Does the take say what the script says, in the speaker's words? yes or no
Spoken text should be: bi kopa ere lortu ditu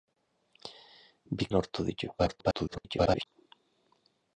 no